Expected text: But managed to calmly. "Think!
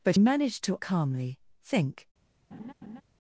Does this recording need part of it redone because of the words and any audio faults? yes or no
yes